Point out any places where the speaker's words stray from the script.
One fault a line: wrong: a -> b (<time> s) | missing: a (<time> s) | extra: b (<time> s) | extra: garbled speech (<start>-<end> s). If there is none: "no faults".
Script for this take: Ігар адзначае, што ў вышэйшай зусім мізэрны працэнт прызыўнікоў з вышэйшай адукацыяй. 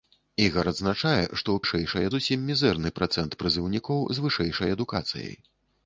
no faults